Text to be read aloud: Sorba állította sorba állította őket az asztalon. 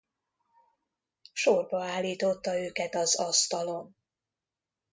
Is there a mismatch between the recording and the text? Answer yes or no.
yes